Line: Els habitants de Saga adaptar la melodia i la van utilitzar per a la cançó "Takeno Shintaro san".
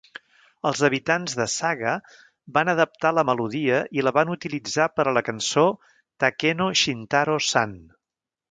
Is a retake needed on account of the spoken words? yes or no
yes